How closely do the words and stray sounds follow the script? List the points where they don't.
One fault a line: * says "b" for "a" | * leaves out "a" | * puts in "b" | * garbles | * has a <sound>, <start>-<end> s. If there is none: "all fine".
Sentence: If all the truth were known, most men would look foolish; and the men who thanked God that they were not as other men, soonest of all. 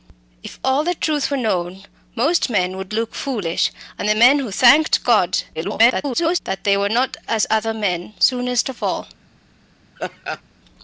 * garbles
* has a laugh, 10.0-10.4 s